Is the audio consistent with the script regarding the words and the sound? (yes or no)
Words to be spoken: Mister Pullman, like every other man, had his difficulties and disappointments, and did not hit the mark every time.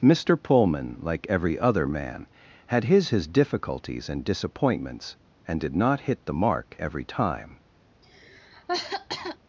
no